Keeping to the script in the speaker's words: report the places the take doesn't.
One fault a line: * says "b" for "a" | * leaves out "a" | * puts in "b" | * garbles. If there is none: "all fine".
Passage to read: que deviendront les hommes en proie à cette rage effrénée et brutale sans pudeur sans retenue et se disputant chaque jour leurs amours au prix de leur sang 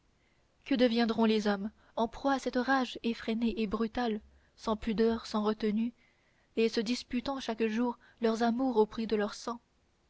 all fine